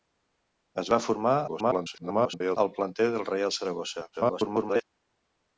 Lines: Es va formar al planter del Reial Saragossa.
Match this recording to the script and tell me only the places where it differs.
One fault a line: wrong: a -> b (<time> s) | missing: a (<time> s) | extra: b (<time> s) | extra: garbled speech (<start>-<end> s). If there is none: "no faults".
extra: garbled speech (1.5-2.6 s)
extra: garbled speech (4.1-4.8 s)